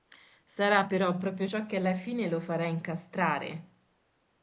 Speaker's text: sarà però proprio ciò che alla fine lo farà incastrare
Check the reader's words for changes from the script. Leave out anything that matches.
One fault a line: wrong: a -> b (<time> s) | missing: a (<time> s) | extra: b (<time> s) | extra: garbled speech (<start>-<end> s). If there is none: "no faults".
no faults